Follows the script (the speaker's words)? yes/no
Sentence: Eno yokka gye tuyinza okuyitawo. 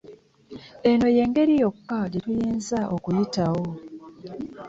no